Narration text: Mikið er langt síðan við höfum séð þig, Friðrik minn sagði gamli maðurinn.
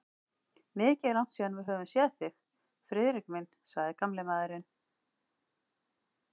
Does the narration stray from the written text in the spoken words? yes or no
no